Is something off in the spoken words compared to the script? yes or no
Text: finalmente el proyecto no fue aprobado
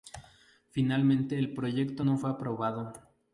no